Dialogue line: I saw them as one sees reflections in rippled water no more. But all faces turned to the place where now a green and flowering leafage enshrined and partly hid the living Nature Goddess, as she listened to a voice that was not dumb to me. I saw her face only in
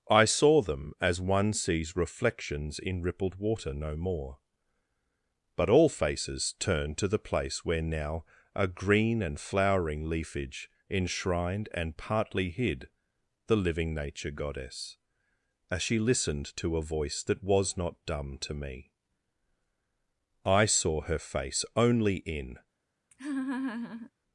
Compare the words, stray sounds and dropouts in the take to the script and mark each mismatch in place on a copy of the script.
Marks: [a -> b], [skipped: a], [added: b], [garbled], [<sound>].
I saw them as one sees reflections in rippled water no more. But all faces turned to the place where now a green and flowering leafage enshrined and partly hid the living Nature Goddess, as she listened to a voice that was not dumb to me. I saw her face only in [laugh]